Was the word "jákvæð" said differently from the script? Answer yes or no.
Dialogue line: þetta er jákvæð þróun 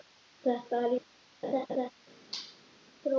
yes